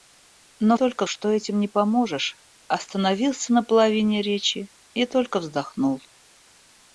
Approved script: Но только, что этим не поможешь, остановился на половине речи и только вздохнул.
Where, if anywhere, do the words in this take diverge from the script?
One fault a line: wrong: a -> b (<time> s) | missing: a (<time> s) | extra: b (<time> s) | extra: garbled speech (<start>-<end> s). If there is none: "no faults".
no faults